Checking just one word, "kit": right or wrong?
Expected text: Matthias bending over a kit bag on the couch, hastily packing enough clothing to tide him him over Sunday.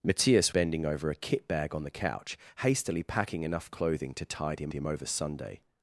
right